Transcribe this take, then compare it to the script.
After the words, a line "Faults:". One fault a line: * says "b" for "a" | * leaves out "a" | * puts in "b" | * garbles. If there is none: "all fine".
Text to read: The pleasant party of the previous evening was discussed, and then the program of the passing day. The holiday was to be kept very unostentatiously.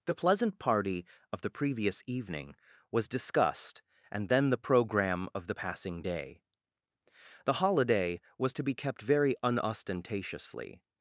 The pleasant party of the previous evening was discussed, and then the program of the passing day. The holiday was to be kept very unostentatiously.
Faults:
all fine